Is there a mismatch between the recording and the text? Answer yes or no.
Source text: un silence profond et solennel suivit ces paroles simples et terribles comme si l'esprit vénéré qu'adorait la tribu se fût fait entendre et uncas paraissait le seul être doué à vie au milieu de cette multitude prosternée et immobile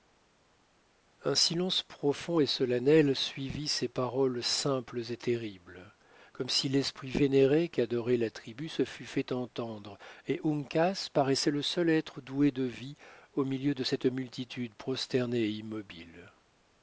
yes